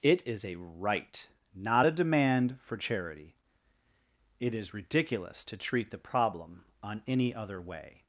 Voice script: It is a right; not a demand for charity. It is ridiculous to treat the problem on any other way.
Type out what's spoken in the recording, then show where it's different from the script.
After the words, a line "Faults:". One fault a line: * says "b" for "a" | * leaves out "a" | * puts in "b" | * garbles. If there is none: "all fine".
It is a right; not a demand for charity. It is ridiculous to treat the problem on any other way.
Faults:
all fine